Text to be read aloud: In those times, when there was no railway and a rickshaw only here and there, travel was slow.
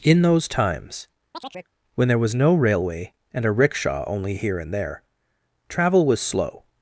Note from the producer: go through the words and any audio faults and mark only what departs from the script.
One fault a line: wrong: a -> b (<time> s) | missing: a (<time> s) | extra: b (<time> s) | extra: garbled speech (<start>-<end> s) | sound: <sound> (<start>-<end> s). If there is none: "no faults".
sound: chirp (1.3-1.7 s)